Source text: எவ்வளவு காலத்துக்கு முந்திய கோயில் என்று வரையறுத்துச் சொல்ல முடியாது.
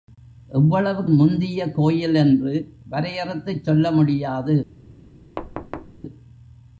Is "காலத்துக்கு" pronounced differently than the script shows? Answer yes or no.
yes